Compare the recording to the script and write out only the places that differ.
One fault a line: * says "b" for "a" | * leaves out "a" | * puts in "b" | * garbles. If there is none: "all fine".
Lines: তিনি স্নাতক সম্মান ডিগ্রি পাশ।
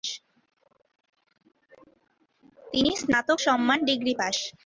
all fine